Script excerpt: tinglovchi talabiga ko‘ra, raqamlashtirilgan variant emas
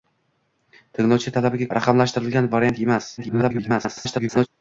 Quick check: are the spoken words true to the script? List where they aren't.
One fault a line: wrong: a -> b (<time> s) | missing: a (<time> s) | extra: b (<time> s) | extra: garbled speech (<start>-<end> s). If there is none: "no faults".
missing: ko‘ra (1.7 s)
extra: garbled speech (3.2-4.5 s)